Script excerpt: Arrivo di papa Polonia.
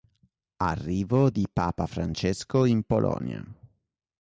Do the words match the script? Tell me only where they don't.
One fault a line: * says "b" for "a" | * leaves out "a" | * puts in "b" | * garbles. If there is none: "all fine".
* puts in "Francesco in"